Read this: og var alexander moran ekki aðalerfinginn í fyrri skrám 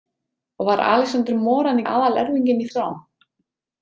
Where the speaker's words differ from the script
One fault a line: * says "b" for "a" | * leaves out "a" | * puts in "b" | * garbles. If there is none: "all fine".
* leaves out "ekki"
* leaves out "fyrri"